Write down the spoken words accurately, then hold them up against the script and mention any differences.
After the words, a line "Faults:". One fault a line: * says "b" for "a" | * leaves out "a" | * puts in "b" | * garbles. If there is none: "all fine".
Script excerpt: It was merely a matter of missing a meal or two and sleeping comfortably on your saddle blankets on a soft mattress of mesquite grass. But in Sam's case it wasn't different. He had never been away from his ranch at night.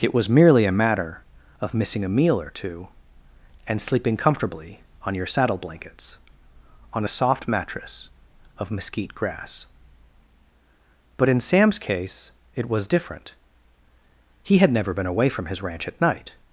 It was merely a matter of missing a meal or two and sleeping comfortably on your saddle blankets on a soft mattress of mesquite grass. But in Sam's case it was different. He had never been away from his ranch at night.
Faults:
* says "was" for "wasn't"